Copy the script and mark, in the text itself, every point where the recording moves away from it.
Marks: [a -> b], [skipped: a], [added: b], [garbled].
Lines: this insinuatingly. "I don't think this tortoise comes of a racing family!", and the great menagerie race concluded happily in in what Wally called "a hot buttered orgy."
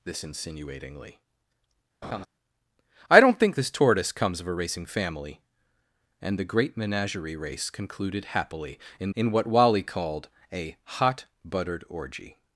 this insinuatingly. "I don't think this tortoise comes of a racing family!", and the great menagerie race concluded happily in in what Wally called "a hot buttered orgy."